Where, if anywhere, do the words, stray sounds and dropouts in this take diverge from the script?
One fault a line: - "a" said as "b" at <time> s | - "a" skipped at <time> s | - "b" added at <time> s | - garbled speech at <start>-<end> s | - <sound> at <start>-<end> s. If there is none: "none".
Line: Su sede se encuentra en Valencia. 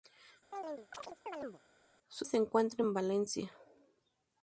- chirp at 0.5-1.6 s
- "sede" skipped at 2.3 s